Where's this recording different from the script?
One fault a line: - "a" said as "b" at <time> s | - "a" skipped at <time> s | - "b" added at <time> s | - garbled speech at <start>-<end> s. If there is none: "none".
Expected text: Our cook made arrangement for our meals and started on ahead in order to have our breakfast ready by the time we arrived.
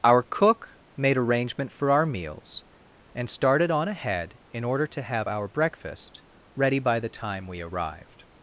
none